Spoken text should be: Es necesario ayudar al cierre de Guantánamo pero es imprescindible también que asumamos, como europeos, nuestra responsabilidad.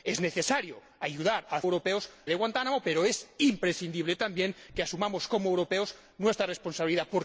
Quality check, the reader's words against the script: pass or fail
fail